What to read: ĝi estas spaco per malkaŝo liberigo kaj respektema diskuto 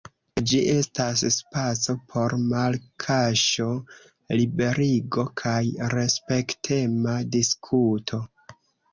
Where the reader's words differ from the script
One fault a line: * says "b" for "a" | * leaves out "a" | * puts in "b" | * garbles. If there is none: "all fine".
* says "por" for "per"